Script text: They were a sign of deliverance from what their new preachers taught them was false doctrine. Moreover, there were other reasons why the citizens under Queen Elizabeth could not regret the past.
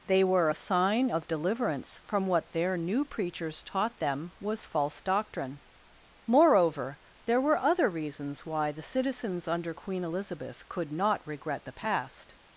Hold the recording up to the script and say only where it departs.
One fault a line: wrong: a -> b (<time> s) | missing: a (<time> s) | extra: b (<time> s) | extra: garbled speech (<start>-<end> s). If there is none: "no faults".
no faults